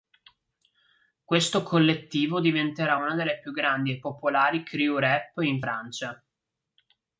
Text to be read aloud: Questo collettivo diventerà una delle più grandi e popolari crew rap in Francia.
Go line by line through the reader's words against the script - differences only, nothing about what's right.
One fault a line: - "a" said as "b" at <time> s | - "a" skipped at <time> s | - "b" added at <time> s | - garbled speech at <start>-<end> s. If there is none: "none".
none